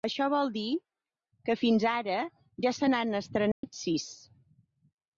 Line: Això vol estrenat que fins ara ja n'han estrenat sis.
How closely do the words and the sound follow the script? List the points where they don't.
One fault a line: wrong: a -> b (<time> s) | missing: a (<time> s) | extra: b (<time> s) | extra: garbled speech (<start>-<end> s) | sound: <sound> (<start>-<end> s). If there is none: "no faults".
wrong: estrenat -> dir (0.5 s)
extra: se (2.8 s)
sound: dropout (3.5-3.6 s)